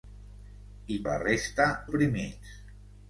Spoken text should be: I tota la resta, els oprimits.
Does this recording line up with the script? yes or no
no